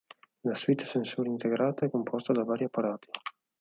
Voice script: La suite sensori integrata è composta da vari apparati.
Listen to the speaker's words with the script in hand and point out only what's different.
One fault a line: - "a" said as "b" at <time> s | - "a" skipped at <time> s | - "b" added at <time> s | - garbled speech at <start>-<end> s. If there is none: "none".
none